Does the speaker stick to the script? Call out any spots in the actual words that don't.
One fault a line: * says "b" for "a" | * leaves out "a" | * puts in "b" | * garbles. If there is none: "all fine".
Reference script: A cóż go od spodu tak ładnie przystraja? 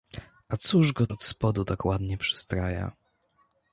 all fine